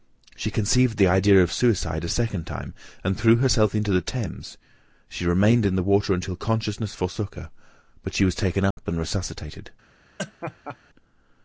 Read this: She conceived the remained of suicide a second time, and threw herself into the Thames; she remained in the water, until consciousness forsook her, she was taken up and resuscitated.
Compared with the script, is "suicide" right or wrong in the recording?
right